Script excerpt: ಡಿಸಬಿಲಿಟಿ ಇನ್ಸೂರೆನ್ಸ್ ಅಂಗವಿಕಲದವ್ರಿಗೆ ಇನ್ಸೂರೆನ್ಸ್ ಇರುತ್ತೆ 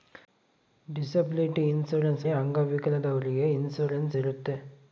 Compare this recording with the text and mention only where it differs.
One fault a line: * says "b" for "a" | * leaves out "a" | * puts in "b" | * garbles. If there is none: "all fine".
all fine